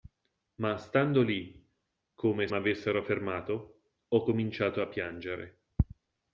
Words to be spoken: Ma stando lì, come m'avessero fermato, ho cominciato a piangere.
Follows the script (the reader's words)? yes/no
yes